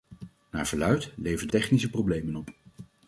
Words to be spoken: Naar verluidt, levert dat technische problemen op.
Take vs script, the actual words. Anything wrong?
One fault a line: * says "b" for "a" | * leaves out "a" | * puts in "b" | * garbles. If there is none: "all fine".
* leaves out "dat"